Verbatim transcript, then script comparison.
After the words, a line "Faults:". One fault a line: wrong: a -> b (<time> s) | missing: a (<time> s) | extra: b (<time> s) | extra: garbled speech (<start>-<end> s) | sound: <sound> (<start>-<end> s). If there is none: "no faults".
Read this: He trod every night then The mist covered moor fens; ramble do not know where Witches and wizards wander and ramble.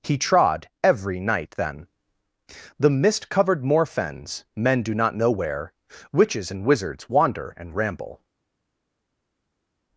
He trod every night then The mist covered moor fens; men do not know where Witches and wizards wander and ramble.
Faults:
wrong: ramble -> men (4.5 s)